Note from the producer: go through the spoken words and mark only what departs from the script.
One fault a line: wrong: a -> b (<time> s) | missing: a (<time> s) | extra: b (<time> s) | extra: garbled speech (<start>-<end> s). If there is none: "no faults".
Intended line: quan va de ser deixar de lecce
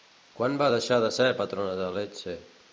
extra: deixar (0.7 s)
wrong: deixar -> patrona (1.4 s)